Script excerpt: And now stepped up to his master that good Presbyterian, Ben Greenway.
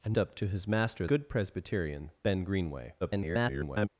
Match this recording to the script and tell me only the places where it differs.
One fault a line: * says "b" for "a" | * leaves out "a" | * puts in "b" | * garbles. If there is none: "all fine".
* leaves out "now stepped"
* leaves out "that"
* garbles